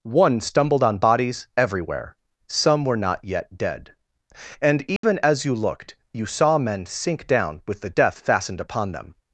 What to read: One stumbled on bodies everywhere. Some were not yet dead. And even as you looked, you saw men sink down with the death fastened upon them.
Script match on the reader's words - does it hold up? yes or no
yes